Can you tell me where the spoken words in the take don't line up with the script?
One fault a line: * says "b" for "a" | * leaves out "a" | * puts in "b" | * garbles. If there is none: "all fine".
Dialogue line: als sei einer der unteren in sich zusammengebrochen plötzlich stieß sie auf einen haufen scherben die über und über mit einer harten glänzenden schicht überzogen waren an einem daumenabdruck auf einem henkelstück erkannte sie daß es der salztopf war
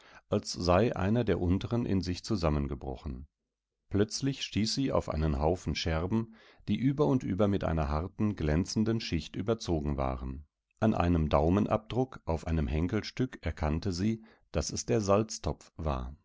all fine